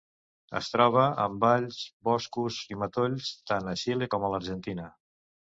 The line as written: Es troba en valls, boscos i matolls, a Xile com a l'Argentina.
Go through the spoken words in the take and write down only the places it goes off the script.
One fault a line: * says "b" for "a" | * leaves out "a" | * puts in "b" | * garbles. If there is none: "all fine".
* puts in "tant"